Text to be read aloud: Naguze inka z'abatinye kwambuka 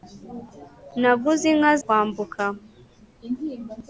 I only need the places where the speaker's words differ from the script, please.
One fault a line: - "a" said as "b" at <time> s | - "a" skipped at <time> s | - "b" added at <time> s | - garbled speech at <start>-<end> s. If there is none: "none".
- "z'abatinye" skipped at 1.7 s